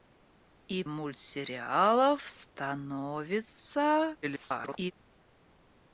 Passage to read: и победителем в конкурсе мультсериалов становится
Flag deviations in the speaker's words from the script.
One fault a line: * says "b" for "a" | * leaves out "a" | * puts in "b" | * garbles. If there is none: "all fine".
* leaves out "победителем в конкурсе"
* garbles